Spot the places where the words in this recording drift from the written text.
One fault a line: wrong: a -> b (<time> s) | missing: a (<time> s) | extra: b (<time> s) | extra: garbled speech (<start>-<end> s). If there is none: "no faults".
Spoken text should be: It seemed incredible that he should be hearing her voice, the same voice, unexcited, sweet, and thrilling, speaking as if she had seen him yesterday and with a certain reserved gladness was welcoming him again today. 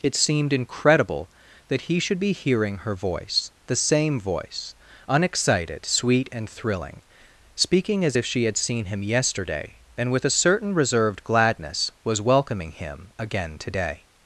no faults